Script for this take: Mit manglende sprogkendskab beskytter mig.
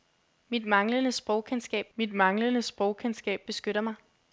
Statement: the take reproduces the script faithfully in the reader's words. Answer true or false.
false